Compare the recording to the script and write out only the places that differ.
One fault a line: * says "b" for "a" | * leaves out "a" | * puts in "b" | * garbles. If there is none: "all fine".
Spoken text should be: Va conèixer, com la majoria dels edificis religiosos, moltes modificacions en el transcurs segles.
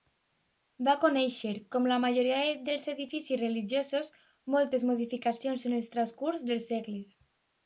* puts in "dels"